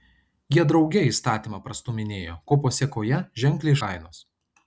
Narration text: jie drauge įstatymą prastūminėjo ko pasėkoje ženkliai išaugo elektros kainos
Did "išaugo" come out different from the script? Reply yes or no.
yes